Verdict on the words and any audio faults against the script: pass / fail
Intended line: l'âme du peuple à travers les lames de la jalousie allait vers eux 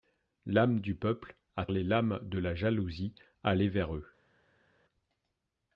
fail